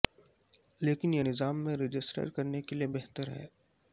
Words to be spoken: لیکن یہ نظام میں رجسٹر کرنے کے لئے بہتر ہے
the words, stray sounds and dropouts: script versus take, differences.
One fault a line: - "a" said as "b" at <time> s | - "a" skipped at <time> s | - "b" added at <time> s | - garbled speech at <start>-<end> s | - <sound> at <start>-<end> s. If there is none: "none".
none